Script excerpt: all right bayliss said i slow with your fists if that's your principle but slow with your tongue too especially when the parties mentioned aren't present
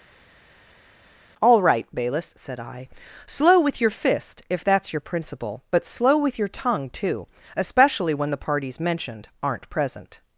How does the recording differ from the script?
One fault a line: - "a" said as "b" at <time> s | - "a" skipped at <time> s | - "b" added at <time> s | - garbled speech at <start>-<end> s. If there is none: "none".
- "fists" said as "fist" at 3.9 s